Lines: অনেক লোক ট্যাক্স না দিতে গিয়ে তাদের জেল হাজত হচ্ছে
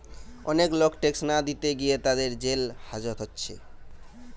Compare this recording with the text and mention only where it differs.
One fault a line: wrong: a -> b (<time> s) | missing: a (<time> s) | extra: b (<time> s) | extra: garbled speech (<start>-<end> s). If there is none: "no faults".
no faults